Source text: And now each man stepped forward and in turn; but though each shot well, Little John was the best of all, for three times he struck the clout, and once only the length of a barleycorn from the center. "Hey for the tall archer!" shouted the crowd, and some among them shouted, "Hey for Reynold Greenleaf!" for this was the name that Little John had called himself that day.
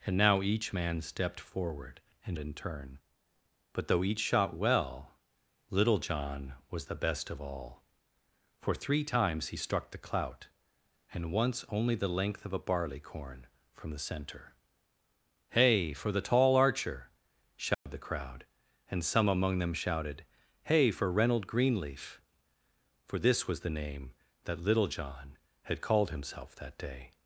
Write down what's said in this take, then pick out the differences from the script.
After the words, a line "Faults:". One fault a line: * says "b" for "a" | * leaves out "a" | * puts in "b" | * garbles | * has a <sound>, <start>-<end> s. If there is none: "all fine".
And now each man stepped forward and in turn; but though each shot well, Little John was the best of all, for three times he struck the clout, and once only the length of a barleycorn from the center. "Hey for the tall archer!" shouted the crowd, and some among them shouted, "Hey for Reynold Greenleaf!" for this was the name that Little John had called himself that day.
Faults:
* has a dropout, 17.7-17.9 s